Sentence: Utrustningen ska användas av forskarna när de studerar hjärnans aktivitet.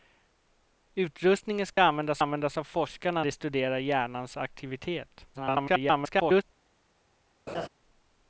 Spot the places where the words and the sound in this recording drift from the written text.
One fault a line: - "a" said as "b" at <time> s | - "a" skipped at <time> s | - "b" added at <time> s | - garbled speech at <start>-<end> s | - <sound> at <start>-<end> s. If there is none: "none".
- dropout at 1.7-1.8 s
- "användas" added at 2.2 s
- "när" skipped at 3.2 s
- garbled speech at 5.3-6.4 s
- laugh at 7.5-7.7 s